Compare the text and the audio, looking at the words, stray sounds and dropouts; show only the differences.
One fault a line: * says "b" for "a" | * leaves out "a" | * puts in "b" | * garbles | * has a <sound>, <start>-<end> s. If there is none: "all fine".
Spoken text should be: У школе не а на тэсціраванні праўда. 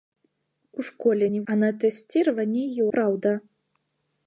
all fine